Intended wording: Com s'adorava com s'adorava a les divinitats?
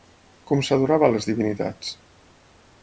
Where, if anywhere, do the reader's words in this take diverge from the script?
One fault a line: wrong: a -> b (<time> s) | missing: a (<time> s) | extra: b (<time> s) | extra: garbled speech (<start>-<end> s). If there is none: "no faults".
missing: com s'adorava (1.1 s)